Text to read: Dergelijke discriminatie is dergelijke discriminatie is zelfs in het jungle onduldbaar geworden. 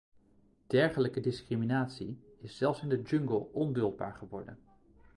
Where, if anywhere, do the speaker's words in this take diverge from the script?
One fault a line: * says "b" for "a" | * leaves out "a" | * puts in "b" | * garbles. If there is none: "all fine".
* leaves out "dergelijke discriminatie is"
* says "de" for "het"